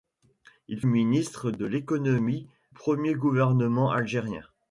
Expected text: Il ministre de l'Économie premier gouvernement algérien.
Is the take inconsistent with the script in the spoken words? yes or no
no